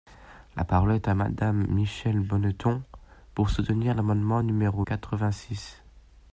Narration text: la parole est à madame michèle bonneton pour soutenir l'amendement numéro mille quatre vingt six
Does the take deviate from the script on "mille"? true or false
true